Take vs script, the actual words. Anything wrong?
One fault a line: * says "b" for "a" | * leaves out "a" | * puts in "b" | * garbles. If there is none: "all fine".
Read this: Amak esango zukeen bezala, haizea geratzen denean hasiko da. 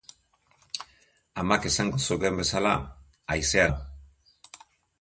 * leaves out "geratzen denean hasiko"